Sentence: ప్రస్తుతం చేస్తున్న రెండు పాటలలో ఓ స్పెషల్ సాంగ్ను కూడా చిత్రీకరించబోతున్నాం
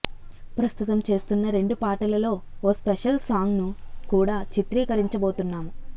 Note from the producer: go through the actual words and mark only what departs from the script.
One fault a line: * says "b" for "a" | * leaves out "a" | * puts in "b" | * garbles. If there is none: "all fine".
all fine